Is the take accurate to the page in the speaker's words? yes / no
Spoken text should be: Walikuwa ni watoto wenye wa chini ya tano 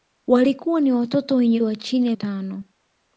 yes